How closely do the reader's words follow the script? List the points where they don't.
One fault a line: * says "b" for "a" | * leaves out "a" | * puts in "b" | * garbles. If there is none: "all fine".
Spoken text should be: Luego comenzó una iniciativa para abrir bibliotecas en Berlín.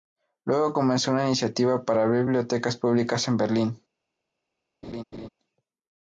* puts in "públicas"